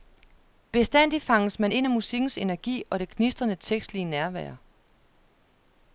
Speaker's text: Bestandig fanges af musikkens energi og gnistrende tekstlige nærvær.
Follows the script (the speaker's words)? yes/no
no